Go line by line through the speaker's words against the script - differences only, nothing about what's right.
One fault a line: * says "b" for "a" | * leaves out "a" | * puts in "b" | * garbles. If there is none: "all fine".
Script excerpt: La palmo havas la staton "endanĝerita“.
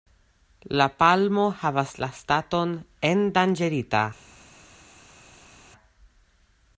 all fine